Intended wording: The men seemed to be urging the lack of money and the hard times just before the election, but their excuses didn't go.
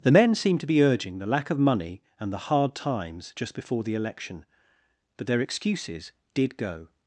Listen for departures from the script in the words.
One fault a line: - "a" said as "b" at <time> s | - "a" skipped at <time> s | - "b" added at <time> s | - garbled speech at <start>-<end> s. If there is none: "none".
- "didn't" said as "did" at 6.3 s